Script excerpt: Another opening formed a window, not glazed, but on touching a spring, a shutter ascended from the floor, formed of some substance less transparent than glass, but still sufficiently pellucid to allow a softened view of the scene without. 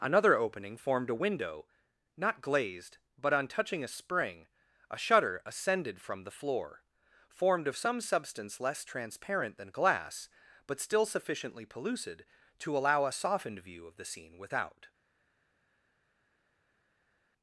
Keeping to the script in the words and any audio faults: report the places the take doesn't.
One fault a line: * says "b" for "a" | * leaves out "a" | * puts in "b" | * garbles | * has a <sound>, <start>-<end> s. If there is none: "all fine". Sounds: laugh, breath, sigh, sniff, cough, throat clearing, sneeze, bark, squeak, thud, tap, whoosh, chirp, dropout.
all fine